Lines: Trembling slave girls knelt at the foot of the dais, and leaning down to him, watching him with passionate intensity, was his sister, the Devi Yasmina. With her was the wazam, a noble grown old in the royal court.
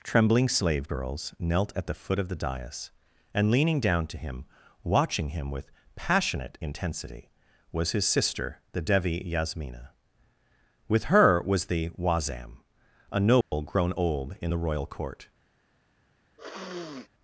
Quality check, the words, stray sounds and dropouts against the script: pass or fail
fail